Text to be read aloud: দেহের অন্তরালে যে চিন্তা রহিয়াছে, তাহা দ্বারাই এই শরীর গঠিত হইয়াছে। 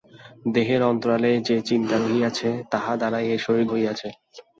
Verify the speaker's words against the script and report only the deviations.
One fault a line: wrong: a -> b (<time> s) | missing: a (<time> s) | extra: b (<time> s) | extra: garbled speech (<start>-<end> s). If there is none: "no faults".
missing: গঠিত (3.6 s)